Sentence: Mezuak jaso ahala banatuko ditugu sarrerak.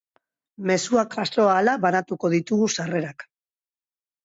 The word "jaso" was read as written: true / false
true